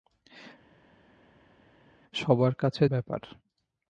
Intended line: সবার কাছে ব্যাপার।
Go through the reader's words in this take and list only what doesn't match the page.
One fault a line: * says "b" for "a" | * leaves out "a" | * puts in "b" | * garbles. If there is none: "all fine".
all fine